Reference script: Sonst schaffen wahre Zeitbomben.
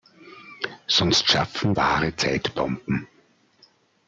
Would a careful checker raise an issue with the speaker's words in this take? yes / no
no